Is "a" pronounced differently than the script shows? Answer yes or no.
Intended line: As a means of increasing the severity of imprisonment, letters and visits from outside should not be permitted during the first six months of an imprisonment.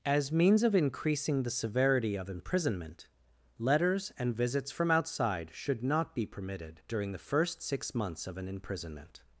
yes